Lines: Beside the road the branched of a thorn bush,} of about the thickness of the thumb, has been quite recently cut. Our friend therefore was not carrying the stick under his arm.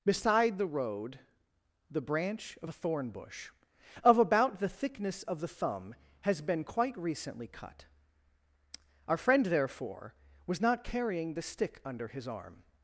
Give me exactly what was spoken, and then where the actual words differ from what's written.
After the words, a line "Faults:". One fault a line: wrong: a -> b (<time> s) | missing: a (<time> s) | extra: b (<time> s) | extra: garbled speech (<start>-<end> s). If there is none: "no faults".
Beside the road the branch of a thorn bush,} of about the thickness of the thumb, has been quite recently cut. Our friend therefore was not carrying the stick under his arm.
Faults:
wrong: branched -> branch (2.0 s)